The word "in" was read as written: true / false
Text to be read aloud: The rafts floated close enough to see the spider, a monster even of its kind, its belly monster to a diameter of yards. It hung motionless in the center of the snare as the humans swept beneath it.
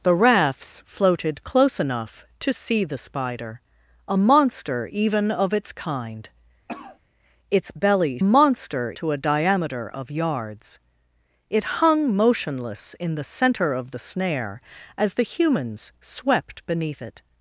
true